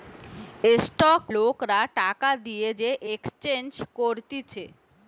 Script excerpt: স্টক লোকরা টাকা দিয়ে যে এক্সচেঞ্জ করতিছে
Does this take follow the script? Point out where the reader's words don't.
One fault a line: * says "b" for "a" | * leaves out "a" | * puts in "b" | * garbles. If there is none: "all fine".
all fine